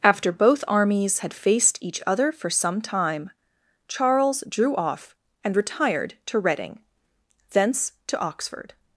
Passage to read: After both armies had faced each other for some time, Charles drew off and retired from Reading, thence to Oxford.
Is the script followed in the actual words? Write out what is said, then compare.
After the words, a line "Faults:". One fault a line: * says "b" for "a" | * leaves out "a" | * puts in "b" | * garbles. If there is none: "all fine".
After both armies had faced each other for some time, Charles drew off and retired to Reading, thence to Oxford.
Faults:
* says "to" for "from"